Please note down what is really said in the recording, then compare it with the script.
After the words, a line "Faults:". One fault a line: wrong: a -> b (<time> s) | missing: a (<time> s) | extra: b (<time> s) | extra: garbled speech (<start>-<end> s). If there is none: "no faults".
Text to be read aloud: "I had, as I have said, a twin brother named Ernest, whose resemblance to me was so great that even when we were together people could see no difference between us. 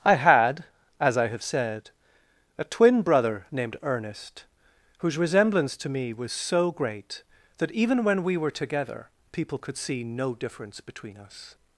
"I had, as I have said, a twin brother named Ernest, whose resemblance to me was so great that even when we were together people could see no difference between us.
Faults:
no faults